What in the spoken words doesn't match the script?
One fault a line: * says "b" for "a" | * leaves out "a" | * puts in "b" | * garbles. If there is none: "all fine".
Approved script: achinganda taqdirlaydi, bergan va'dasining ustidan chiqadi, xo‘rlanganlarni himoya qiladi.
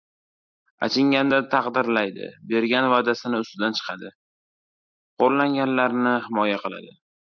all fine